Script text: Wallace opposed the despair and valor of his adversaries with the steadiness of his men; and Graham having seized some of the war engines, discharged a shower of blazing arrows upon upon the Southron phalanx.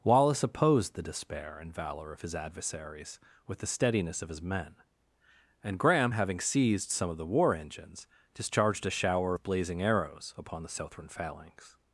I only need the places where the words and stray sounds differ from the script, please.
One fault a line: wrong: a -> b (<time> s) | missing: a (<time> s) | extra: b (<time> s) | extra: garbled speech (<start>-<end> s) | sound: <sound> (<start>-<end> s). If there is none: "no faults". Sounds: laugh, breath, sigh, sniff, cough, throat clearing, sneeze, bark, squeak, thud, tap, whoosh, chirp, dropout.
missing: upon (10.6 s)